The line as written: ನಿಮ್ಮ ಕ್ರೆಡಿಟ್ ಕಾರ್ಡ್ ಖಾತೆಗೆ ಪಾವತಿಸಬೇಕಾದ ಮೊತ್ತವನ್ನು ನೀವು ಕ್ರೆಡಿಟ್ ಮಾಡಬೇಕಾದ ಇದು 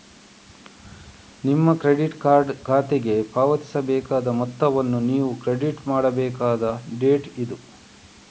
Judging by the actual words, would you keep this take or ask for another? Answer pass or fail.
fail